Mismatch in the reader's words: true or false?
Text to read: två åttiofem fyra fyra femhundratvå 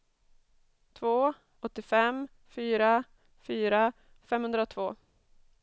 false